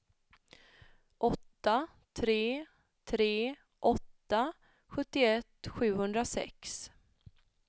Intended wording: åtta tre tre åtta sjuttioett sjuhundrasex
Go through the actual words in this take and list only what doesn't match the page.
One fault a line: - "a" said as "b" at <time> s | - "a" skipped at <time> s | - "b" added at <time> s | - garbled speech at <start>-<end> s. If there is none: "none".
none